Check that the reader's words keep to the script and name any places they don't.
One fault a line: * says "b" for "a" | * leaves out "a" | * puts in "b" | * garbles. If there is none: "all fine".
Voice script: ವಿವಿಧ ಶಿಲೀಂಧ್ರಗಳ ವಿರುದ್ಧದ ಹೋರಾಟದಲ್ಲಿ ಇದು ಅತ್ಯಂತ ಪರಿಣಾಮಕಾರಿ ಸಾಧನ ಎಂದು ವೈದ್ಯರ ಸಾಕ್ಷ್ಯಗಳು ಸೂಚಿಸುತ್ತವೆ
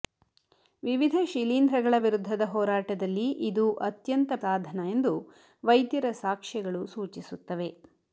* leaves out "ಪರಿಣಾಮಕಾರಿ"